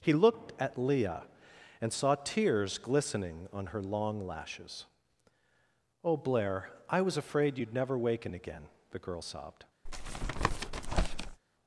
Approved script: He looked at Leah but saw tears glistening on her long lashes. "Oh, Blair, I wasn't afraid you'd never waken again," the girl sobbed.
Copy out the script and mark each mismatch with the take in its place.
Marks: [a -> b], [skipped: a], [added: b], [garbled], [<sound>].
He looked at Leah [but -> and] saw tears glistening on her long lashes. "Oh, Blair, I [wasn't -> was] afraid you'd never waken again," the girl sobbed. [tap]